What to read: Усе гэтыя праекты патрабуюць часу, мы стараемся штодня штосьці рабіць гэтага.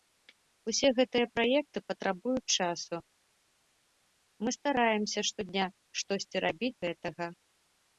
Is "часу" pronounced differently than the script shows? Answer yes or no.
no